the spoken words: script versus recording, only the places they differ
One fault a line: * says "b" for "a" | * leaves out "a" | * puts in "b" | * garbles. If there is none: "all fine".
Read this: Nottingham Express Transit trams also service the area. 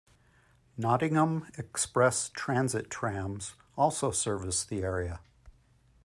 all fine